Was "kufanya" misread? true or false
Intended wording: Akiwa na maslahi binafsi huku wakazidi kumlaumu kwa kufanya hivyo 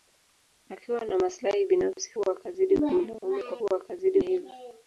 true